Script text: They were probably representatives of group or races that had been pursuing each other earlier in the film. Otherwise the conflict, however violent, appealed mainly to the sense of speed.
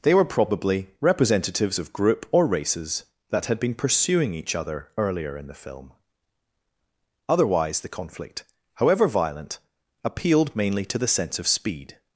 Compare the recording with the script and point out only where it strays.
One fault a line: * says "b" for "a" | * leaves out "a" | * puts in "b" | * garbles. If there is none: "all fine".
all fine